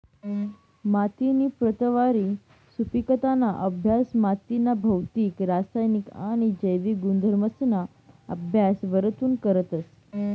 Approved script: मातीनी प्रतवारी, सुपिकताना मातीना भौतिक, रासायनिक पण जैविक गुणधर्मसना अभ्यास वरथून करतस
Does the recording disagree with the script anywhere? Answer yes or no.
yes